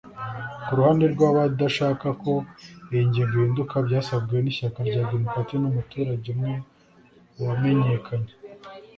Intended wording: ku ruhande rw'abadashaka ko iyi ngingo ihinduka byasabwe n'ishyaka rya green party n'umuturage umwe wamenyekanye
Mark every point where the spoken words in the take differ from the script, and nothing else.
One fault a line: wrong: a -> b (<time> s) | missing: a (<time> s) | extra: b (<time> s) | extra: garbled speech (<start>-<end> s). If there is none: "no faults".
no faults